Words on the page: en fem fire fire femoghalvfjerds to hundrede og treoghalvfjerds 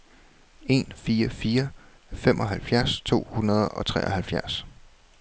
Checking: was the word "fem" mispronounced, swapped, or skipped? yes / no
yes